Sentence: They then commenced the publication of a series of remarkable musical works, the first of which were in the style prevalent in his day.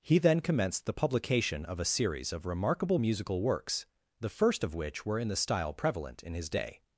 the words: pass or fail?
fail